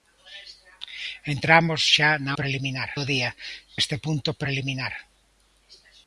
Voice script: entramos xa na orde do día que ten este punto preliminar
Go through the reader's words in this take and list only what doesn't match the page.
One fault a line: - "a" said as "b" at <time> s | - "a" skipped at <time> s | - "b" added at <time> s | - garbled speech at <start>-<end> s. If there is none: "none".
- "orde" said as "preliminar" at 2.4 s
- "que ten" skipped at 3.3 s